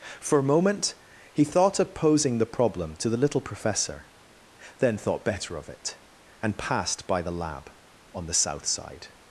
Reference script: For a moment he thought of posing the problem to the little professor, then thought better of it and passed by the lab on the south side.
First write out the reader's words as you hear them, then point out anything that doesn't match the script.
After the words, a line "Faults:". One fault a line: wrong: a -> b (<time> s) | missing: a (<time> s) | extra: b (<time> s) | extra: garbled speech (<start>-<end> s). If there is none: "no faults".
For a moment he thought of posing the problem to the little professor, then thought better of it and passed by the lab on the south side.
Faults:
no faults